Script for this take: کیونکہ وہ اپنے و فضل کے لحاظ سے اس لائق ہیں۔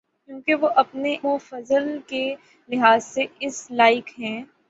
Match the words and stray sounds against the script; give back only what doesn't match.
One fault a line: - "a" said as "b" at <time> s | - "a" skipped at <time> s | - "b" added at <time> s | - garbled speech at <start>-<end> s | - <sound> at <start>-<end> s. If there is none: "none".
none